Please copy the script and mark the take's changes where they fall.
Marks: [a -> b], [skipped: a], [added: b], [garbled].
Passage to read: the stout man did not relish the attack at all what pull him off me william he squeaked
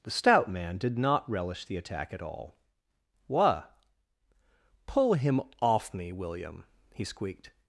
the stout man did not relish the attack at all what pull him off me william he squeaked